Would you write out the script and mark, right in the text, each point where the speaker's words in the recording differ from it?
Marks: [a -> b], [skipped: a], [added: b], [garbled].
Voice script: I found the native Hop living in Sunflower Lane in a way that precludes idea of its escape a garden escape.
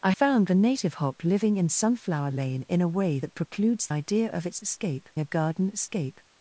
I found the native Hop living in Sunflower Lane in a way that precludes idea of its escape a garden escape.